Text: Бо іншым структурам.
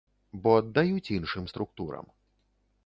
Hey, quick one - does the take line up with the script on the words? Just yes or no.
no